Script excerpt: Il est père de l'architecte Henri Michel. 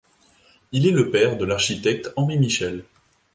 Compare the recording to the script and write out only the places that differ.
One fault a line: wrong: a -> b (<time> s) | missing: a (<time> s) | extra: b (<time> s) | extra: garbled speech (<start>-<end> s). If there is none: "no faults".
extra: le (0.9 s)